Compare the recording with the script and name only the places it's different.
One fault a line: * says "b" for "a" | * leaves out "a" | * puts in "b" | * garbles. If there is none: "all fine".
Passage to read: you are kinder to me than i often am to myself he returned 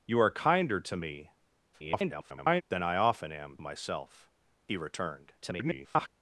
* garbles
* leaves out "to"
* garbles